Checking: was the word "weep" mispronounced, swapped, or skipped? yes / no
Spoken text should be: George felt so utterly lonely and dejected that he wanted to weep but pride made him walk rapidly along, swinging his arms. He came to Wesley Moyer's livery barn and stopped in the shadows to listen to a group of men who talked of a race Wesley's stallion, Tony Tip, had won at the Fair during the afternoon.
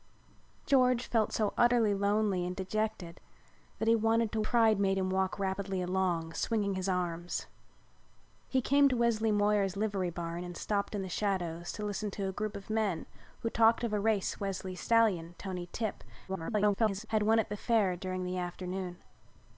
yes